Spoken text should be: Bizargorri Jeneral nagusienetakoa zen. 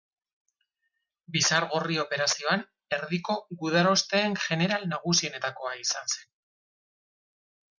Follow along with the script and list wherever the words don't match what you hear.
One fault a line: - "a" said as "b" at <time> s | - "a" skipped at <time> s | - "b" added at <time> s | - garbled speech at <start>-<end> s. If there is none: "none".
- "Operazioan erdiko gudarosteen" added at 2.0 s
- "izan" added at 5.9 s